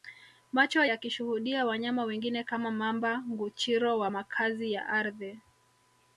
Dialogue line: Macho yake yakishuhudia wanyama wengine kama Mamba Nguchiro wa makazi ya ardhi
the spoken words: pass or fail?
fail